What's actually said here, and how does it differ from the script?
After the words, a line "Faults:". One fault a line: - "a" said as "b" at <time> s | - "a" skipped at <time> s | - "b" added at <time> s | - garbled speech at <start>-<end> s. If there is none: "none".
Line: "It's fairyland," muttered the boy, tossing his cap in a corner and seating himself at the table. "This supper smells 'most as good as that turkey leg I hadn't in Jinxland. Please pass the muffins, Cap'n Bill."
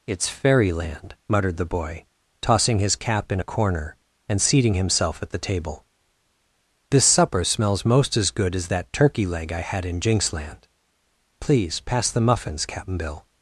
"It's fairyland," muttered the boy, tossing his cap in a corner and seating himself at the table. "This supper smells 'most as good as that turkey leg I had in Jinxland. Please pass the muffins, Cap'n Bill."
Faults:
- "hadn't" said as "had" at 9.6 s